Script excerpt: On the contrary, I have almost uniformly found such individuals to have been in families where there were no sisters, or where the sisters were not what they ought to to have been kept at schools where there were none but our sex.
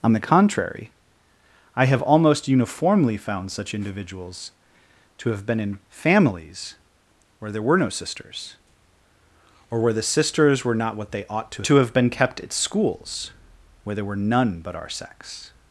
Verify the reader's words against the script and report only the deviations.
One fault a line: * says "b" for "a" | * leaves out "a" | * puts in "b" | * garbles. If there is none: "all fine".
all fine